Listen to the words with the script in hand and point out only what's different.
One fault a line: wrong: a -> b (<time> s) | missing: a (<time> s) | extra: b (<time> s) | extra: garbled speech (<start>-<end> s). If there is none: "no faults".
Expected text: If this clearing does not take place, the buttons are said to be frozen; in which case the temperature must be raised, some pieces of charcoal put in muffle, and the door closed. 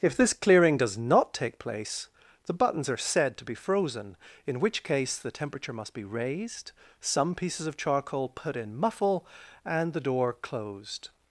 no faults